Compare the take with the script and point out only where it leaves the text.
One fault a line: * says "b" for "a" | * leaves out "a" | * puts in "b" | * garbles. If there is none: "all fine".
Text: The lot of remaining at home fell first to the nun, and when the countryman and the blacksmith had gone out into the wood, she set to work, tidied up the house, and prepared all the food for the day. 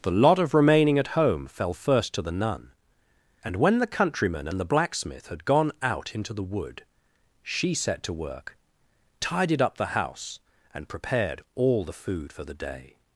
all fine